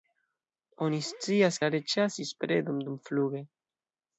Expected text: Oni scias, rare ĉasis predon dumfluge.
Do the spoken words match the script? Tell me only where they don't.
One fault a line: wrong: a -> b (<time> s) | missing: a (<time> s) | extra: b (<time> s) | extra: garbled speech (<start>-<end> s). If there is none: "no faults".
no faults